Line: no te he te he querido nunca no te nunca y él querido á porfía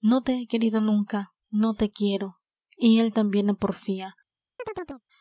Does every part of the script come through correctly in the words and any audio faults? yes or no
no